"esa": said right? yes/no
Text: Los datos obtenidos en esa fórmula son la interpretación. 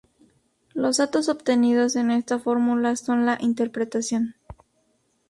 no